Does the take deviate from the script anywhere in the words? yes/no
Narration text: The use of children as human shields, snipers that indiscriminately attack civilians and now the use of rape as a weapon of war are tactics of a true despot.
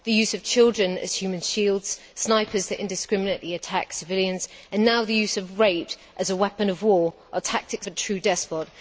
yes